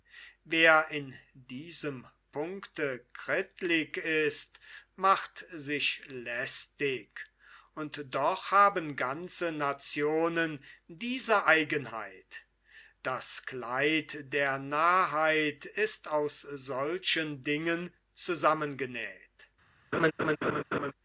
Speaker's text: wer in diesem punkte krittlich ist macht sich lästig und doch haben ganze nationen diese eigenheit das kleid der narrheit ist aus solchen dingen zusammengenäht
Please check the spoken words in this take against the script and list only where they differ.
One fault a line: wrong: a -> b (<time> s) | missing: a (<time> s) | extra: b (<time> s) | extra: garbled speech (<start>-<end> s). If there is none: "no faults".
no faults